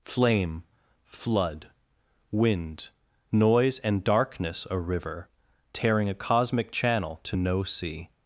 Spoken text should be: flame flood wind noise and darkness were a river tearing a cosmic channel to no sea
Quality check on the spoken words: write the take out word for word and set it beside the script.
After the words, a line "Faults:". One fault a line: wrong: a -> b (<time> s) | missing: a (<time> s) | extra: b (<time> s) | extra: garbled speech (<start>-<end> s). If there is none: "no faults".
flame flood wind noise and darkness a river tearing a cosmic channel to no sea
Faults:
missing: were (4.7 s)